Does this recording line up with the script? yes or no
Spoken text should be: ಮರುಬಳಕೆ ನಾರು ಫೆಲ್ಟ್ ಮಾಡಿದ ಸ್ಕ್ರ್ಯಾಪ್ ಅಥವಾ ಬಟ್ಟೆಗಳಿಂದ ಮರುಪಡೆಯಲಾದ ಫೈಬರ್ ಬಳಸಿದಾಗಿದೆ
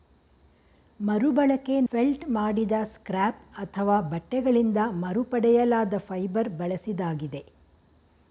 no